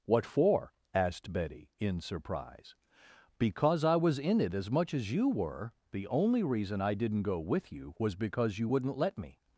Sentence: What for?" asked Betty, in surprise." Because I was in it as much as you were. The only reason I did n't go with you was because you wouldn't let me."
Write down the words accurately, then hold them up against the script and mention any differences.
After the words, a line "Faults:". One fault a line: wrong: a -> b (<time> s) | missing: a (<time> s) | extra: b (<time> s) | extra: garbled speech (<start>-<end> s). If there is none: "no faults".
What for?" asked Betty, in surprise." Because I was in it as much as you were. The only reason I did n't go with you was because you wouldn't let me."
Faults:
no faults